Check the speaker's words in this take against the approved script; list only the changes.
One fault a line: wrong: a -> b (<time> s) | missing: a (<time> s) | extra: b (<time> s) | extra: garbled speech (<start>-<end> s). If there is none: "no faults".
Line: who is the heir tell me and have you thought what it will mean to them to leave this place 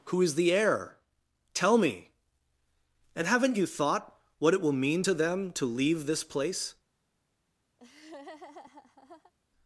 wrong: have -> haven't (3.3 s)